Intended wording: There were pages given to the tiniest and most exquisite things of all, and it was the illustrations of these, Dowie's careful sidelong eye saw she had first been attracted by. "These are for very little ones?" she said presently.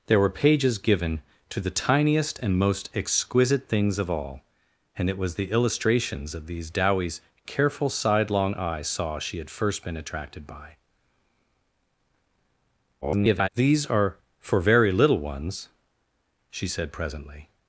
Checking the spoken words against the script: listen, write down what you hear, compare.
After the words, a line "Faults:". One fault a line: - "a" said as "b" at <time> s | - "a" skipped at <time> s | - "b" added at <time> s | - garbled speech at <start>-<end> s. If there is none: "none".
There were pages given to the tiniest and most exquisite things of all, and it was the illustrations of these, Dowie's careful sidelong eye saw she had first been attracted by. [garbled] "These are for very little ones?" she said presently.
Faults:
- garbled speech at 13.0-13.5 s